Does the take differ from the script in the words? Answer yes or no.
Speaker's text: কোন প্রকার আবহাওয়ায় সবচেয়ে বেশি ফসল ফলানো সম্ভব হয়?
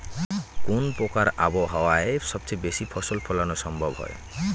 no